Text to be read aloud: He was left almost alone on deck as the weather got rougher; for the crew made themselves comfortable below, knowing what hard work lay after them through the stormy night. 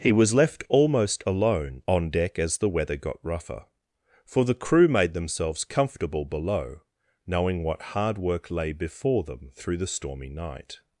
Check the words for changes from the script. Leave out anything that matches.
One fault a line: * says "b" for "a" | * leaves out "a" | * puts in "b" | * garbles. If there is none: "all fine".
* says "before" for "after"